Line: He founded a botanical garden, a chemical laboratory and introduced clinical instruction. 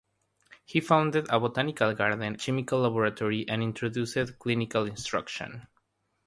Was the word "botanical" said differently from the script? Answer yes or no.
no